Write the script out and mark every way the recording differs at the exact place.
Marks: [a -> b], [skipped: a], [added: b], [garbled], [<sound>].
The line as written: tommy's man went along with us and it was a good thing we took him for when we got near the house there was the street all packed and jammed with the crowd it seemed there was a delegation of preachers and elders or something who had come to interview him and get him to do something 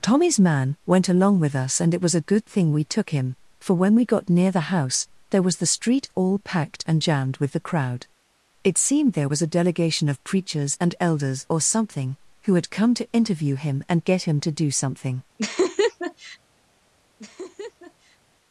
tommy's man went along with us and it was a good thing we took him for when we got near the house there was the street all packed and jammed with the crowd it seemed there was a delegation of preachers and elders or something who had come to interview him and get him to do something [laugh] [laugh]